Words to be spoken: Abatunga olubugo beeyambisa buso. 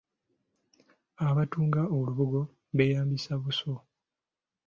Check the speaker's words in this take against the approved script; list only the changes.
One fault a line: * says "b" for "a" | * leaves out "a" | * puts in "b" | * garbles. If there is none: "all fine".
all fine